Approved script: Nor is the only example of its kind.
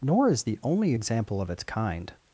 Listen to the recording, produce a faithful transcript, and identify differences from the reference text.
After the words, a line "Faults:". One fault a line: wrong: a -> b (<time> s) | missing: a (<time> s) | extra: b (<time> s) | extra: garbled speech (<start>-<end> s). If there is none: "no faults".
Nor is the only example of its kind.
Faults:
no faults